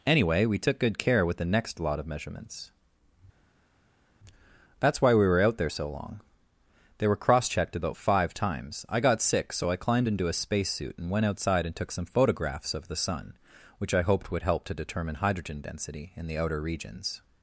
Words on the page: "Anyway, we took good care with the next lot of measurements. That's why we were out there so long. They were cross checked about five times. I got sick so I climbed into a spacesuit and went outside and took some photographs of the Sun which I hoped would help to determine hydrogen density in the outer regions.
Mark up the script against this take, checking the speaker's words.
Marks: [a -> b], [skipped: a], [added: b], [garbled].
"Anyway, we took good care with the next lot of measurements. That's why we were out there so long. They were cross checked about five times. I got sick so I climbed into a spacesuit and went outside and took some photographs of the Sun which I hoped would help to determine hydrogen density in the outer regions.